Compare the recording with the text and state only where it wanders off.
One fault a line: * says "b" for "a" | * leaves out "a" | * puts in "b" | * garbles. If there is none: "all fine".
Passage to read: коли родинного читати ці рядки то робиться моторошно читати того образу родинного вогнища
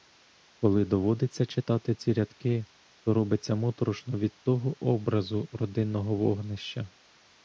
* says "доводиться" for "родинного"
* says "від" for "читати"